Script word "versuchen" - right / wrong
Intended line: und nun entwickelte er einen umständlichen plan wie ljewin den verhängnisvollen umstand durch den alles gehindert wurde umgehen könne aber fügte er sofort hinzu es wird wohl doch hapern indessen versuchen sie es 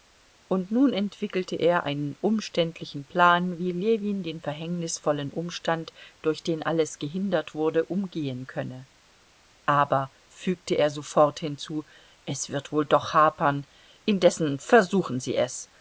right